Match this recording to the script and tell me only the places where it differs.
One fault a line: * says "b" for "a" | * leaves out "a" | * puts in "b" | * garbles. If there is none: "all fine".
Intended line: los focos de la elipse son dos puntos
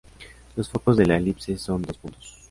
all fine